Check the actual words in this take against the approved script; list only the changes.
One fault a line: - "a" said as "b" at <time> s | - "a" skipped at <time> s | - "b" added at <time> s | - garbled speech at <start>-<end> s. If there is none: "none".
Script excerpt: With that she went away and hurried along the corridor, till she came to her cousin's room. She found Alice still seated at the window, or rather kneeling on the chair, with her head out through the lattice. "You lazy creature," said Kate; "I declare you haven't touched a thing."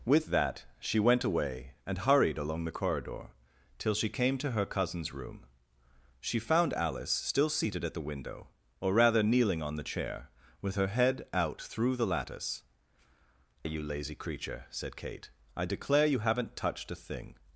none